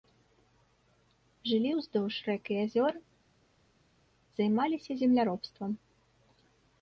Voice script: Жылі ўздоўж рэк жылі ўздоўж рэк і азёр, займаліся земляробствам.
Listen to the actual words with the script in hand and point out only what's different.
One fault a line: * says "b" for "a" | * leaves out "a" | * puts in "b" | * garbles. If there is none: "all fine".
* leaves out "жылі ўздоўж рэк"